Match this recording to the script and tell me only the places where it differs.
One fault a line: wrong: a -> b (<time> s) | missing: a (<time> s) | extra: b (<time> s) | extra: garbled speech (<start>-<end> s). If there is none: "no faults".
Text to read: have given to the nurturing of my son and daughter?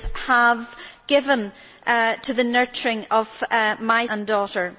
missing: son (4.0 s)